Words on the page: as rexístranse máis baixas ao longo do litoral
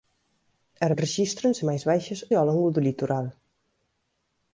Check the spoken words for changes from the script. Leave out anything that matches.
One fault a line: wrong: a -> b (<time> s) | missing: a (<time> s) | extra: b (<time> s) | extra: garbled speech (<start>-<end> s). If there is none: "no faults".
no faults